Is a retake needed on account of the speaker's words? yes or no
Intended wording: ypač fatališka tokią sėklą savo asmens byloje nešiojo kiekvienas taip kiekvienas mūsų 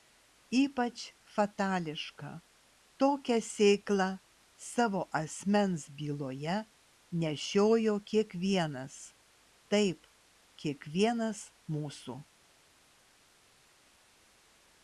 no